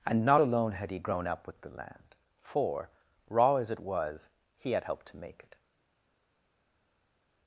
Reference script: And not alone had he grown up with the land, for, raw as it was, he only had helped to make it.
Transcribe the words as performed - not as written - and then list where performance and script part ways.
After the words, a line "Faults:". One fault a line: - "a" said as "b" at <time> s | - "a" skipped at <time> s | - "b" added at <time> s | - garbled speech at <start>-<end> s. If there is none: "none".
And not alone had he grown up with the land, for, raw as it was, he had helped to make it.
Faults:
- "only" skipped at 4.7 s